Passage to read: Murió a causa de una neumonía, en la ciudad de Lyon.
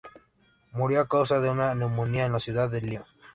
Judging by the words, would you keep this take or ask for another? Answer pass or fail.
pass